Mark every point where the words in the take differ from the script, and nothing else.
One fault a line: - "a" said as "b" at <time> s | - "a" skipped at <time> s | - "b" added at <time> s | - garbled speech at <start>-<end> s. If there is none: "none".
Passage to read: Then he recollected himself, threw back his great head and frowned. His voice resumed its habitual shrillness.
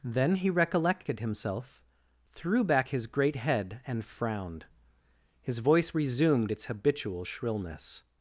none